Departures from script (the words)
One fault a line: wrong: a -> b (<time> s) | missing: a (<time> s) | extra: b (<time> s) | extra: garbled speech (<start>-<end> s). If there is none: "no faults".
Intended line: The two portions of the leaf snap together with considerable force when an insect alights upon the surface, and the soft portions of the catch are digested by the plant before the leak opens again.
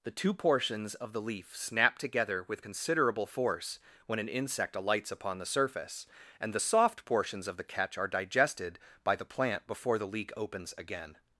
no faults